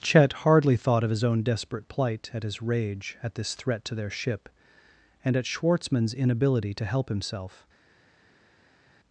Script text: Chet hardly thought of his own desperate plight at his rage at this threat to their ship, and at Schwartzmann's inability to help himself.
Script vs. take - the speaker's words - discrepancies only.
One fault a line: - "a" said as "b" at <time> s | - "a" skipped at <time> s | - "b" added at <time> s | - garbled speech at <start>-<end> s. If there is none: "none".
none